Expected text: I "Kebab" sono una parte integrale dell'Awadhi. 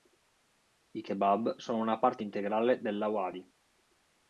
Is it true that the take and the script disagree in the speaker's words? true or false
false